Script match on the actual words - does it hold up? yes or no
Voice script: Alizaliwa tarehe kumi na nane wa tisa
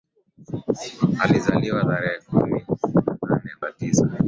yes